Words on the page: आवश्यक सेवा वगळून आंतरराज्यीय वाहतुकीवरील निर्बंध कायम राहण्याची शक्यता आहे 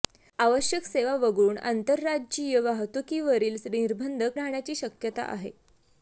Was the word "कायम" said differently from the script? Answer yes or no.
yes